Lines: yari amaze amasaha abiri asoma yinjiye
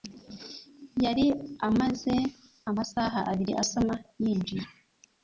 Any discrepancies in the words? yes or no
no